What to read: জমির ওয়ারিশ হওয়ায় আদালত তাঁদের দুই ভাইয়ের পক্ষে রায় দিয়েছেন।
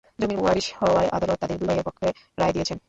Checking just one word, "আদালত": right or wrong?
right